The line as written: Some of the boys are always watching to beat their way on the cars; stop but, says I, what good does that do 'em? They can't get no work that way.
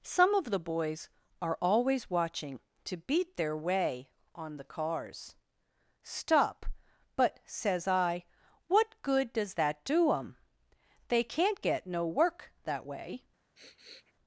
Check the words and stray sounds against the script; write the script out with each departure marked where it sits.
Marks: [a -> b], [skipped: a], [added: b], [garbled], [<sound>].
Some of the boys are always watching to beat their way on the cars; stop but, says I, what good does that do 'em? They can't get no work that way. [sniff]